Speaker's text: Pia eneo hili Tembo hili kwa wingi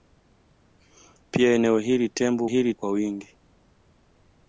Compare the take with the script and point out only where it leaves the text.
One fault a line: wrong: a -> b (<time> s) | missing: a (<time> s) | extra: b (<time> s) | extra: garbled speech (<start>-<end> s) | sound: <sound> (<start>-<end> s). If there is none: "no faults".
no faults